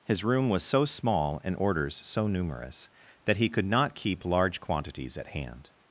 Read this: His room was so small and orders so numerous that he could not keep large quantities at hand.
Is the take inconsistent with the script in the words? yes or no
no